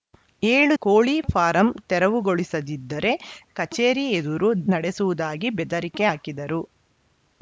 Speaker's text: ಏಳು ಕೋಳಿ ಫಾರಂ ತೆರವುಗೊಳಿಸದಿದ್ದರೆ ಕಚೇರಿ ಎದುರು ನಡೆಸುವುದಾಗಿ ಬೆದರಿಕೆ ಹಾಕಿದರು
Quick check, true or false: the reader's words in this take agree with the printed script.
true